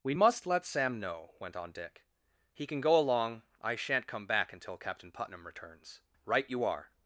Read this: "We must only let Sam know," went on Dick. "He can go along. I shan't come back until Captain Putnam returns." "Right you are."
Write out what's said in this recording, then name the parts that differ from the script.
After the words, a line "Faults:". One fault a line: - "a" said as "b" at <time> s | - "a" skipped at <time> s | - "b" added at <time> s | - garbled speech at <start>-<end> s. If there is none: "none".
"We must let Sam know," went on Dick. "He can go along. I shan't come back until Captain Putnam returns." "Right you are."
Faults:
- "only" skipped at 0.5 s